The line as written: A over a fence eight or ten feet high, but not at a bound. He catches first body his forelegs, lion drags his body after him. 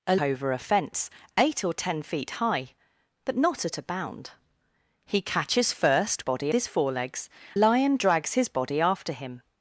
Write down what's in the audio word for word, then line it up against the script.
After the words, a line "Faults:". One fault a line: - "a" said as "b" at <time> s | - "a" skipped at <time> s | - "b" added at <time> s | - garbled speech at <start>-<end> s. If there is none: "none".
A over a fence eight or ten feet high, but not at a bound. He catches first body his forelegs, lion drags his body after him.
Faults:
none